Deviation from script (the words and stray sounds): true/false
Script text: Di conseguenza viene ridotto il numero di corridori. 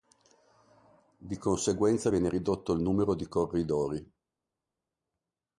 false